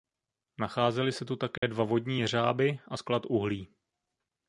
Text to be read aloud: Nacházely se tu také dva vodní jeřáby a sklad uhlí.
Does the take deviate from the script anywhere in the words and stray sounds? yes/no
yes